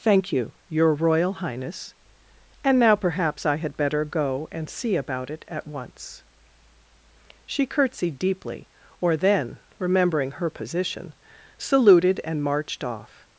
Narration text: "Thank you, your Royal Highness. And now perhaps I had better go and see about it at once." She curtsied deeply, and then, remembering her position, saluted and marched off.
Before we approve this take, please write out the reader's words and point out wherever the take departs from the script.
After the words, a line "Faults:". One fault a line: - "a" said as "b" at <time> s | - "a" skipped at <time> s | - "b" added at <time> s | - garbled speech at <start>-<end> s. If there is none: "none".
"Thank you, your Royal Highness. And now perhaps I had better go and see about it at once." She curtsied deeply, or then, remembering her position, saluted and marched off.
Faults:
- "and" said as "or" at 9.0 s